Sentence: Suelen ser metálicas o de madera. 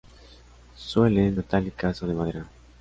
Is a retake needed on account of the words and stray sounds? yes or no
yes